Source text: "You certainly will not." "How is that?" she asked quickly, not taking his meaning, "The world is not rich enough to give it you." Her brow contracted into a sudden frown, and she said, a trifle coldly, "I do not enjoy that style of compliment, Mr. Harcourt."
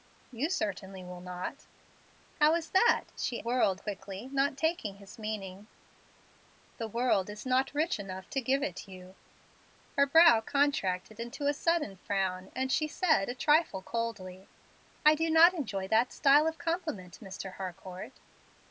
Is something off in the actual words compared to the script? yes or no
yes